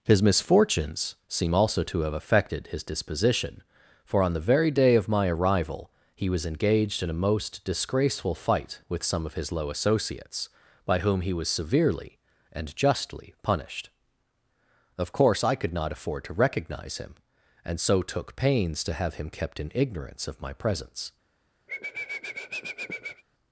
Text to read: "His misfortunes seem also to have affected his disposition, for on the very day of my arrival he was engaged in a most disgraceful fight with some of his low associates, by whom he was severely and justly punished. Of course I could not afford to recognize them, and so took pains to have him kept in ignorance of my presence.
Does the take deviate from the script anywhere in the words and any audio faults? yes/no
yes